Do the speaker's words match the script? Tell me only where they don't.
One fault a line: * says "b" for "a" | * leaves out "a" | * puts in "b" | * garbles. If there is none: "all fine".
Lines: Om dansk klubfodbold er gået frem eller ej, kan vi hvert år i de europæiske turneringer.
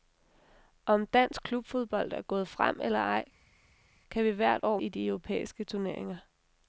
all fine